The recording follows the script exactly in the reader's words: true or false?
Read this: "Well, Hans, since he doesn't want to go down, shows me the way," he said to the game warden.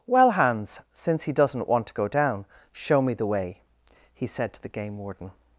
false